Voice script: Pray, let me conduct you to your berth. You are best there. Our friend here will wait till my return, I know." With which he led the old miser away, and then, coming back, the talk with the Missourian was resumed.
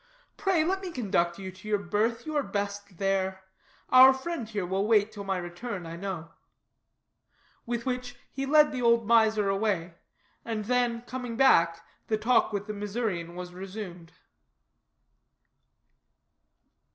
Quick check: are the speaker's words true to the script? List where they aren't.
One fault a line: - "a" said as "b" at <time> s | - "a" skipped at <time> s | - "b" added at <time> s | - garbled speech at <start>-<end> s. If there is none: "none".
none